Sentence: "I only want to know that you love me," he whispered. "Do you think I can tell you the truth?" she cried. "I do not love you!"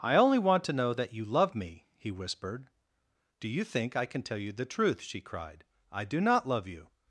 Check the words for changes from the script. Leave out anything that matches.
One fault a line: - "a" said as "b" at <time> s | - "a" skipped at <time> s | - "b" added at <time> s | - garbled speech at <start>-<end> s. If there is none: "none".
none